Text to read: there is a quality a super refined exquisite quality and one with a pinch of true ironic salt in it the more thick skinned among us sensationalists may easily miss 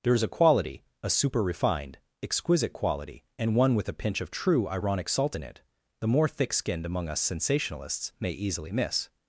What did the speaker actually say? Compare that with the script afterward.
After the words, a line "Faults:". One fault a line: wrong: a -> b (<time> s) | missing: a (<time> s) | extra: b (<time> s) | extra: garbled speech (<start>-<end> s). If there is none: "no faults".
there is a quality a super refined exquisite quality and one with a pinch of true ironic salt in it the more thick skinned among us sensationalists may easily miss
Faults:
no faults